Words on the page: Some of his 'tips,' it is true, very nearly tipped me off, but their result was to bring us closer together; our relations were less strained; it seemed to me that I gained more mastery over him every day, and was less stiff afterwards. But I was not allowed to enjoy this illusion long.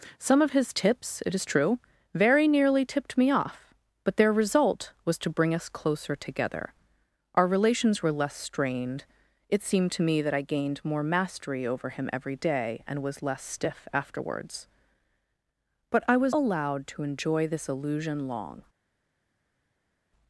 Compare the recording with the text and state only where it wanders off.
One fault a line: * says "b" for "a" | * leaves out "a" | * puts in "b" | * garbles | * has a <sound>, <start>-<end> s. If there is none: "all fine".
* leaves out "not"